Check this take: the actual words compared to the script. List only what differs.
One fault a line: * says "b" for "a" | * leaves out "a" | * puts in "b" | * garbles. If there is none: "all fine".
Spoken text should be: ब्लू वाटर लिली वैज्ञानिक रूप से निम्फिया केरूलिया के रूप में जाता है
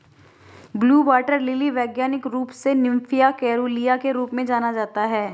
* puts in "जाना"